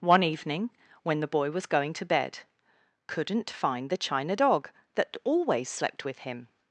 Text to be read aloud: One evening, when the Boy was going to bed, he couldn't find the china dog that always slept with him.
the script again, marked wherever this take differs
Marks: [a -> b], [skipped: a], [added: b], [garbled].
One evening, when the Boy was going to bed, [skipped: he] couldn't find the china dog that always slept with him.